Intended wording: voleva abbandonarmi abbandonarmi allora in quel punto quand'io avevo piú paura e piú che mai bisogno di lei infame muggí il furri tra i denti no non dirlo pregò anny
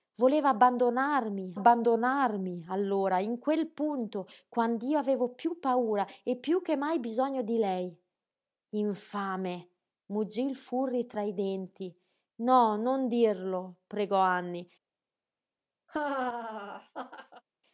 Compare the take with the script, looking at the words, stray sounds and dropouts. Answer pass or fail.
fail